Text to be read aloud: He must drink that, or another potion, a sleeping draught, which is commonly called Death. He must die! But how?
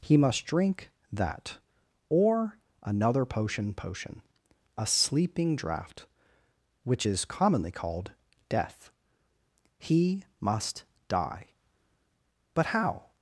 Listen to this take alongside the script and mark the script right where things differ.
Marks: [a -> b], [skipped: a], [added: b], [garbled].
He must drink that, or another potion, [added: potion] a sleeping draught, which is commonly called Death. He must die! But how?